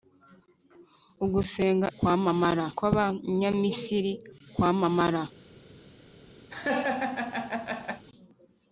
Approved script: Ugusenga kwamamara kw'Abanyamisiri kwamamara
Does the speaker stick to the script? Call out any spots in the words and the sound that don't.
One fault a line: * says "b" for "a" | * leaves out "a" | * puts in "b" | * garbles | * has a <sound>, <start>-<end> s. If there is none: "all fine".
* has a laugh, 6.5-8.0 s